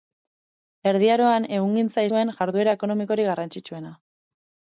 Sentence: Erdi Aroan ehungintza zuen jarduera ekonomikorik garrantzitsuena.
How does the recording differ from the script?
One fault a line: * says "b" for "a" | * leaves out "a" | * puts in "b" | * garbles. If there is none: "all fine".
all fine